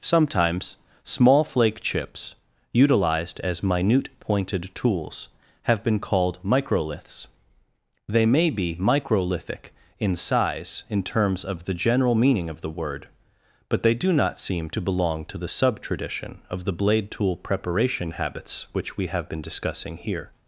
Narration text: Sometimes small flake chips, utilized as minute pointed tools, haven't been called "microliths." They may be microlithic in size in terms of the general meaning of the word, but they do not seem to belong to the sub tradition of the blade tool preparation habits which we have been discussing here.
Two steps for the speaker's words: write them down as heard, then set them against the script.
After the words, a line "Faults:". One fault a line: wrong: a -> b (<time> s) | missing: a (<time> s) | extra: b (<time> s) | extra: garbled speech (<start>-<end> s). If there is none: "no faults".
Sometimes small flake chips, utilized as minute pointed tools, have been called "microliths." They may be microlithic in size in terms of the general meaning of the word, but they do not seem to belong to the sub tradition of the blade tool preparation habits which we have been discussing here.
Faults:
wrong: haven't -> have (5.6 s)